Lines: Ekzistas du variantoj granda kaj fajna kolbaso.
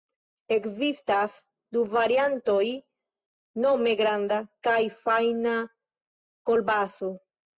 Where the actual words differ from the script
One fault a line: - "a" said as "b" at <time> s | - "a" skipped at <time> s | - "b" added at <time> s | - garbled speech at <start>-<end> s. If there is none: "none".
- "nome" added at 3.6 s